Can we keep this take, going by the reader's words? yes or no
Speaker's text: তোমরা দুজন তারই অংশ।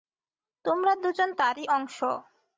yes